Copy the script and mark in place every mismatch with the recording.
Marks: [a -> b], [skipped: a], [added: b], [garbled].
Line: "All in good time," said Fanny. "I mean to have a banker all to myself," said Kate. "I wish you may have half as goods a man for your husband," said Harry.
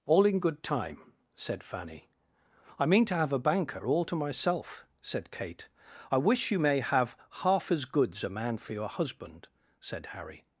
"All in good time," said Fanny. "I mean to have a banker all to myself," said Kate. "I wish you may have half as goods a man for your husband," said Harry.